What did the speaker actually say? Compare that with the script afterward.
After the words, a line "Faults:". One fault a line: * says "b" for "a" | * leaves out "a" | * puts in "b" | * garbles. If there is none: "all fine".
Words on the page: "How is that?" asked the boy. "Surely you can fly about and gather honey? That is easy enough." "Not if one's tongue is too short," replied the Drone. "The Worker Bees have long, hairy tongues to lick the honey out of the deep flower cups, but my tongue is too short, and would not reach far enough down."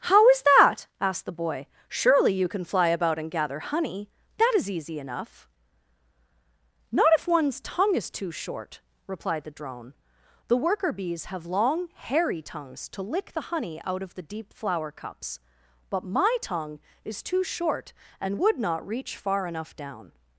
"How is that?" asked the boy. "Surely you can fly about and gather honey? That is easy enough." "Not if one's tongue is too short," replied the Drone. "The Worker Bees have long, hairy tongues to lick the honey out of the deep flower cups, but my tongue is too short, and would not reach far enough down."
Faults:
all fine